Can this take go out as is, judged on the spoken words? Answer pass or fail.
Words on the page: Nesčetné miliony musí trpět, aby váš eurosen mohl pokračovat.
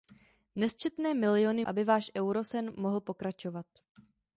fail